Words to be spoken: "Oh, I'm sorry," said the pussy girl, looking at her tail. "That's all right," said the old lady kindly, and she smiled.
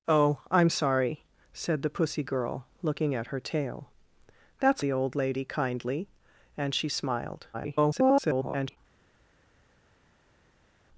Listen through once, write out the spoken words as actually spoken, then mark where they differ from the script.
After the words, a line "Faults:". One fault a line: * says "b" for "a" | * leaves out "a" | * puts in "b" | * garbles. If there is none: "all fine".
"Oh, I'm sorry," said the pussy girl, looking at her tail. "That's the old lady kindly, and she smiled. [garbled]
Faults:
* leaves out "all right said"
* garbles